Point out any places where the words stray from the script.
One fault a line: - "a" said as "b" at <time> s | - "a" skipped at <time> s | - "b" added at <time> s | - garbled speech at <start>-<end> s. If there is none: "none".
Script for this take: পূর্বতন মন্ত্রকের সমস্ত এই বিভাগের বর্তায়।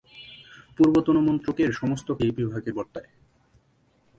none